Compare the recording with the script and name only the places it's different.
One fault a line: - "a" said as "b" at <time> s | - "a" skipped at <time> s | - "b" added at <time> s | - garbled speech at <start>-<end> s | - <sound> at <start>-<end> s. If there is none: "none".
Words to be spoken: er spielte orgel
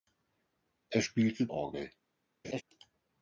- laugh at 2.4-2.6 s